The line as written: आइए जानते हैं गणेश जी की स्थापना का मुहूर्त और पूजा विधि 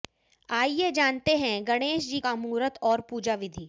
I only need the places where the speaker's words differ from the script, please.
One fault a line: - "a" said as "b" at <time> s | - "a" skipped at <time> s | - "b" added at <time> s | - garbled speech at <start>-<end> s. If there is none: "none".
- "की स्थापना" skipped at 2.2 s